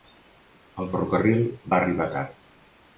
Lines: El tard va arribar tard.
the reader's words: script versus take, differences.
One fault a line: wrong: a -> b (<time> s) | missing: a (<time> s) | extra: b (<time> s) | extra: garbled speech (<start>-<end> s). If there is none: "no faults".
wrong: tard -> ferrocarril (0.9 s)